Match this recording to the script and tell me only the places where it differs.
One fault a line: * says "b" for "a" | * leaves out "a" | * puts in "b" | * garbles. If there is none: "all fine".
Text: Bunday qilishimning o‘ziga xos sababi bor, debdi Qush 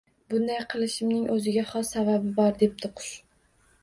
all fine